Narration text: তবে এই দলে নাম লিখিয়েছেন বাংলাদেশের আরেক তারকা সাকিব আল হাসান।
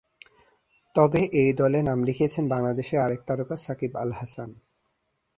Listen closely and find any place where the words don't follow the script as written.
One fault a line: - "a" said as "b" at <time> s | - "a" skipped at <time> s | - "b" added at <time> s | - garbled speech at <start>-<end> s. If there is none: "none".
none